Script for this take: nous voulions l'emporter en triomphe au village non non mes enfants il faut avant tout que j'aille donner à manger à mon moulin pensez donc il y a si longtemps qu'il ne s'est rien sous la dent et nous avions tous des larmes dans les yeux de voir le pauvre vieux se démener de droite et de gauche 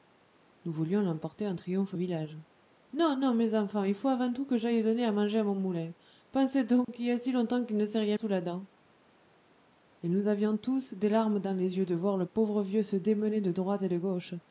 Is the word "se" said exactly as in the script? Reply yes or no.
yes